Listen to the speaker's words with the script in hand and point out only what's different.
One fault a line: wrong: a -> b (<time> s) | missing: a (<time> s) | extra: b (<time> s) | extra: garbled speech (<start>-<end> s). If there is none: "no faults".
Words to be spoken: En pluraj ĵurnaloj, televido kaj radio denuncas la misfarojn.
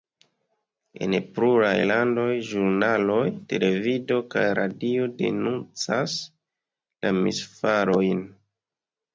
extra: landoj (1.9 s)